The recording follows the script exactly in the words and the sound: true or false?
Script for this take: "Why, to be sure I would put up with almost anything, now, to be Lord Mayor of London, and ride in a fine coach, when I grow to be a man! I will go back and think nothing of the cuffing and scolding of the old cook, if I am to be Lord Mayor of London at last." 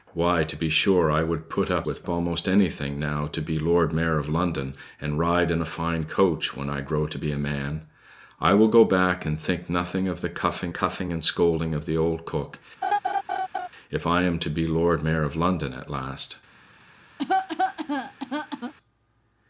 false